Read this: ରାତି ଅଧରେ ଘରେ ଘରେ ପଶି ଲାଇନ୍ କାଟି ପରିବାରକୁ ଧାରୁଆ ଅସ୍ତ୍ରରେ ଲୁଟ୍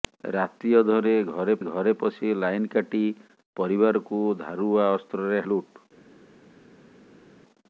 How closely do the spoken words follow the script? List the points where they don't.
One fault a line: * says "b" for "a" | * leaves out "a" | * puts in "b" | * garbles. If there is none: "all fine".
all fine